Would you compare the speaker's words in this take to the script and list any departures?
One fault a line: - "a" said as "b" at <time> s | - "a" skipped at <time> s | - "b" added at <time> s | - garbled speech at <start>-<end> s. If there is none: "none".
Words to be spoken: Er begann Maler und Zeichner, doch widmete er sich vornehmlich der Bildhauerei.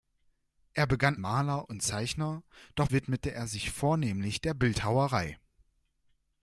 none